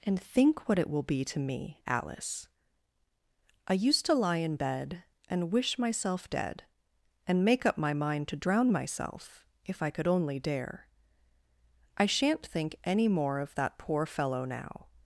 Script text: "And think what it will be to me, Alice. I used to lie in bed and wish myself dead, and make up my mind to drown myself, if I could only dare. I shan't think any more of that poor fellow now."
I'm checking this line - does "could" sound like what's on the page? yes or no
yes